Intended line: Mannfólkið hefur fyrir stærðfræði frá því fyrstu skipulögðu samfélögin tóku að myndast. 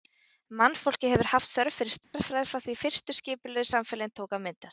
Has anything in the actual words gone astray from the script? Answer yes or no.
yes